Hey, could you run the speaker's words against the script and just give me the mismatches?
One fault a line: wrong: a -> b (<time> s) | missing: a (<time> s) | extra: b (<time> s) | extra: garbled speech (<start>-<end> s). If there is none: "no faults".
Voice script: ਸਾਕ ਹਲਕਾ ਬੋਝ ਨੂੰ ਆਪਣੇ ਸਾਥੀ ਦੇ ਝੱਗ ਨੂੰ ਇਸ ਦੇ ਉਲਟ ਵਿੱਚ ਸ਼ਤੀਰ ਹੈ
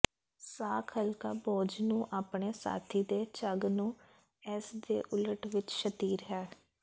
no faults